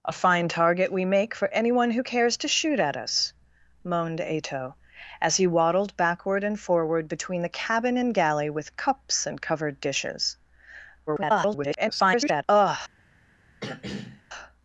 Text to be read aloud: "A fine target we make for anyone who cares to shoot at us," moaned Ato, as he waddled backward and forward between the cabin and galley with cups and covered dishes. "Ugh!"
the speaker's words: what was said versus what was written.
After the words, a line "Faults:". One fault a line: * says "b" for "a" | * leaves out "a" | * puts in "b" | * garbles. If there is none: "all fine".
"A fine target we make for anyone who cares to shoot at us," moaned Ato, as he waddled backward and forward between the cabin and galley with cups and covered dishes. [garbled] "Ugh!"
Faults:
* garbles